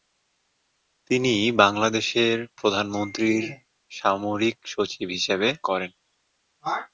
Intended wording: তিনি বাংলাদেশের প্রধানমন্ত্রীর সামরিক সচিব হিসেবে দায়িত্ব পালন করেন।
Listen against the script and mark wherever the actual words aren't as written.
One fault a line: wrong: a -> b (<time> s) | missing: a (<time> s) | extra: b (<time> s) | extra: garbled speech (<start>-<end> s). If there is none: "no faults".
missing: দায়িত্ব পালন (5.5 s)